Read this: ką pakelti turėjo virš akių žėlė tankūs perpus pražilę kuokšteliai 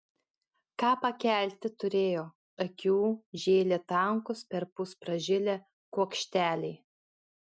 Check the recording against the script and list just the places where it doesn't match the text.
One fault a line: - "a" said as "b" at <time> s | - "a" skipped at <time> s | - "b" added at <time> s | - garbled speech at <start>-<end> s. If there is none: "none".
- "virš" skipped at 2.2 s